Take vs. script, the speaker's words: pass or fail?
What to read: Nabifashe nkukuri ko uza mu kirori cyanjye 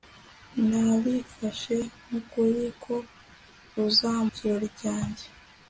fail